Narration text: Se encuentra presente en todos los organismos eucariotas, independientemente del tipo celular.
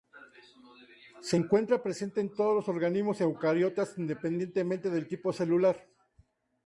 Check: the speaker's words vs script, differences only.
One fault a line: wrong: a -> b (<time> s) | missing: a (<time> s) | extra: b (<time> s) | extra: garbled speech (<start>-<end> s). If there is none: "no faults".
no faults